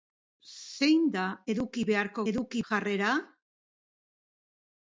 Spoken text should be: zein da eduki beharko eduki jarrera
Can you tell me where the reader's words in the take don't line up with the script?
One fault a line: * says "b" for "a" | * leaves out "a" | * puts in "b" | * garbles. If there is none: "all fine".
all fine